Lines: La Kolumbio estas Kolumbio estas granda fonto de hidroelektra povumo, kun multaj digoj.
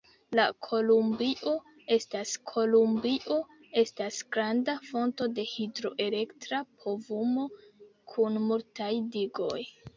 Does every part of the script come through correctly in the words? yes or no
yes